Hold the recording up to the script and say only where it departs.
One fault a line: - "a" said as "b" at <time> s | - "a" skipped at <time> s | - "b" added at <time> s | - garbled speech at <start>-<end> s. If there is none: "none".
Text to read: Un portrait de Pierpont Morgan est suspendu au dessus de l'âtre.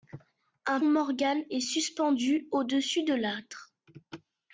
- "portrait de Pierpont" skipped at 0.8 s